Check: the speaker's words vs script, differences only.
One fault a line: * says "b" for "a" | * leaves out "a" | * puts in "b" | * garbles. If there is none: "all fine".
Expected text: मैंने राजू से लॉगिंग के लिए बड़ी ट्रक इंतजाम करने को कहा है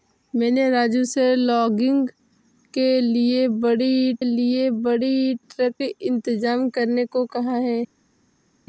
* puts in "लिए बड़ी"